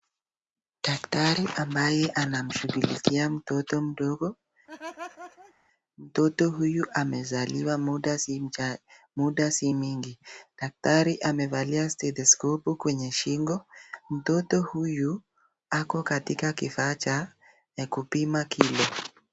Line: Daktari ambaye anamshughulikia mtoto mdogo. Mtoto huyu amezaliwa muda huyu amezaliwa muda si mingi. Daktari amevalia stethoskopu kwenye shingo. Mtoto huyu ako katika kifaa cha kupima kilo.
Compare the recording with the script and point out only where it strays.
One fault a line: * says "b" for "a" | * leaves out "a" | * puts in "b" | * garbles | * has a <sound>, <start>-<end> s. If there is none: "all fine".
* has a laugh, 4.7-5.5 s
* leaves out "huyu amezaliwa muda"